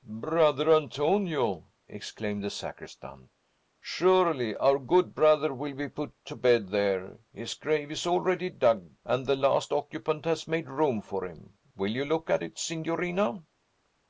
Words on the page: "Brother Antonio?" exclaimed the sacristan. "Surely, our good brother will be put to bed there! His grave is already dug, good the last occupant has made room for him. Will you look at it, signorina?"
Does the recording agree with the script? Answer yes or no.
no